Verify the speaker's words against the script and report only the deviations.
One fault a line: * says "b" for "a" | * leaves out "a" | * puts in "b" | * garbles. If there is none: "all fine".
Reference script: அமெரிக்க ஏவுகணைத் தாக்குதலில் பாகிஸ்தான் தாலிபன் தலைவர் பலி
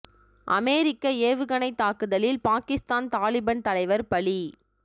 all fine